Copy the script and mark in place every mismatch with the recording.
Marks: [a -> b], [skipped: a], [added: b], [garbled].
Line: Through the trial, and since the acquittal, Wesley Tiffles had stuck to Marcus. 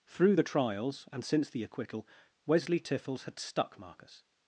Through the [trial, -> trials] and since the acquittal, Wesley Tiffles had stuck [skipped: to] Marcus.